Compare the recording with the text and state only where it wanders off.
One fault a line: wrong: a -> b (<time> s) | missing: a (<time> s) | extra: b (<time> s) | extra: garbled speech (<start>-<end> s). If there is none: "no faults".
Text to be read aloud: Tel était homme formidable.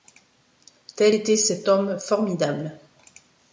extra: cet (1.4 s)